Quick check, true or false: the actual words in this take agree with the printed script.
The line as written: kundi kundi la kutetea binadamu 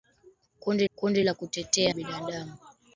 true